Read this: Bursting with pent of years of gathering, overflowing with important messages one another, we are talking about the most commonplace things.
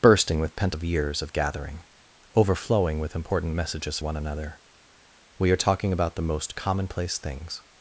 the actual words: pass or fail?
pass